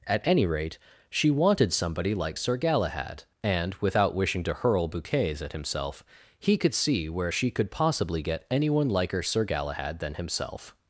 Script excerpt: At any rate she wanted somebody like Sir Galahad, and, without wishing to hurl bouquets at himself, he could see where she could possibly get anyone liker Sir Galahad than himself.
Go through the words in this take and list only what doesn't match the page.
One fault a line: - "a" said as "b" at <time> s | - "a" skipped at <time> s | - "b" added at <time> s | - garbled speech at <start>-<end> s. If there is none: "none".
none